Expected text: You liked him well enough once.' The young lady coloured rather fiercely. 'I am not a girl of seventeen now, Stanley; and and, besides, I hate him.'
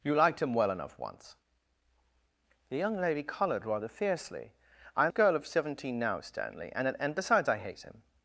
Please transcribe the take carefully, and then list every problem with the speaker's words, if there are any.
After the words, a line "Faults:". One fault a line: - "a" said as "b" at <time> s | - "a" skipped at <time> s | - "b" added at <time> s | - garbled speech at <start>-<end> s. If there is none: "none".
You liked him well enough once.' The young lady coloured rather fiercely. 'I am a girl of seventeen now, Stanley; and and, besides, I hate him.'
Faults:
- "not" skipped at 5.1 s